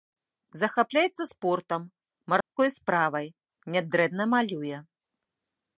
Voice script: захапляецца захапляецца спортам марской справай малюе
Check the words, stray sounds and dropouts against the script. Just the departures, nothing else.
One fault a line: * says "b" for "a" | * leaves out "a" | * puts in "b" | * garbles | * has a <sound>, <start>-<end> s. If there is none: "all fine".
* leaves out "захапляецца"
* has a dropout, 2.4-2.5 s
* puts in "нядрэнна"